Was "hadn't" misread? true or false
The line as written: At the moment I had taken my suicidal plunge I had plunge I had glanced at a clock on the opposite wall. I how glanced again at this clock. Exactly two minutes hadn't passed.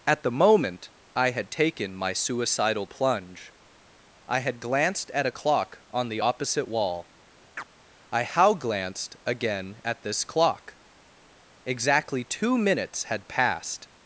true